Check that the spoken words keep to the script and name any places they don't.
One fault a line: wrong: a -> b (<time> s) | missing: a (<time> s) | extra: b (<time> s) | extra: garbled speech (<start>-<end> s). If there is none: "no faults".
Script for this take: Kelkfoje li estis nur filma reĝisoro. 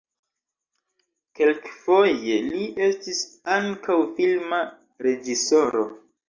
wrong: nur -> ankaŭ (3.6 s)